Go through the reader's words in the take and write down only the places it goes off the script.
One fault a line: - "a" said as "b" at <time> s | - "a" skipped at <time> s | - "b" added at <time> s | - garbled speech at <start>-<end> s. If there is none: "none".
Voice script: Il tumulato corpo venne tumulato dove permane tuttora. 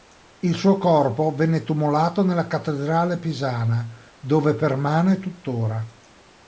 - "tumulato" said as "suo" at 0.6 s
- "nella cattedrale pisana" added at 2.2 s